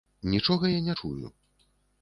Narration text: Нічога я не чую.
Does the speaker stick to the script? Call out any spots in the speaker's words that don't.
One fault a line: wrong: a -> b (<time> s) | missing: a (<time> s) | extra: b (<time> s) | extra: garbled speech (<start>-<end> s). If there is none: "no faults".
no faults